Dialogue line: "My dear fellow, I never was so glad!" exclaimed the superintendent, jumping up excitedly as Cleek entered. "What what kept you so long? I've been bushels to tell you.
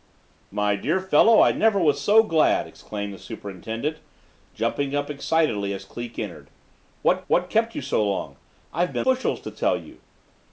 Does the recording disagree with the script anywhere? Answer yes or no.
no